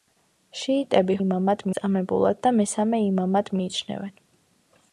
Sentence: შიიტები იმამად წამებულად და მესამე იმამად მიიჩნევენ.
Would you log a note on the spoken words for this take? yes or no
no